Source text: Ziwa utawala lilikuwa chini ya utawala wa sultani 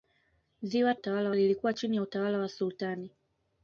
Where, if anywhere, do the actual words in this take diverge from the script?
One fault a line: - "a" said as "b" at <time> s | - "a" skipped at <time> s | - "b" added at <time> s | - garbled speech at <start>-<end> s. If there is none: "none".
none